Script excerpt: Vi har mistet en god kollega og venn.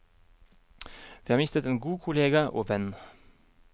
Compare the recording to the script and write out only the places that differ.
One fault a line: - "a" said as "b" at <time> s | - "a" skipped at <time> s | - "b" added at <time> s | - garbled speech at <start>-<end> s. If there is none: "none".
none